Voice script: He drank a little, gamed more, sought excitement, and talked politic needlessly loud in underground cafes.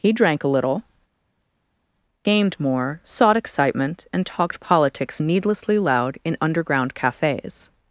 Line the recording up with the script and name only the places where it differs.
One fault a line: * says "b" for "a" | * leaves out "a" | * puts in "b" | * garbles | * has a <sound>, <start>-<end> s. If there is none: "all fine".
* says "politics" for "politic"